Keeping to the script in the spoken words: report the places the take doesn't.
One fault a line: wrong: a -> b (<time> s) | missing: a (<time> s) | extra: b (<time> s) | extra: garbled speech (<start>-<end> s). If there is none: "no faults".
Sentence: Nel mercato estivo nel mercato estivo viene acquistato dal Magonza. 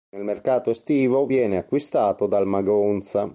missing: nel mercato estivo (1.3 s)